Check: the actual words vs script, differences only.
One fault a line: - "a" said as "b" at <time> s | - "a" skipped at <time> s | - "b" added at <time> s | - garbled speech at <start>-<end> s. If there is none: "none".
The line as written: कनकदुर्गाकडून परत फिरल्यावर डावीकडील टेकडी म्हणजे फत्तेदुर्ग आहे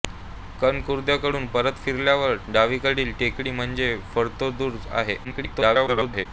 - garbled speech at 5.2-6.3 s